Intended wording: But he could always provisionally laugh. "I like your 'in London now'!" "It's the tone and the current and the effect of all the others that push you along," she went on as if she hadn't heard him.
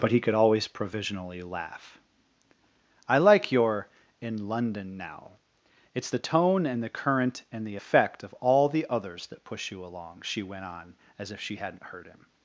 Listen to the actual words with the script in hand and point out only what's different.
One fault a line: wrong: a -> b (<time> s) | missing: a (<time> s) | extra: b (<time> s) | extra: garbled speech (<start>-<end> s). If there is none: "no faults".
no faults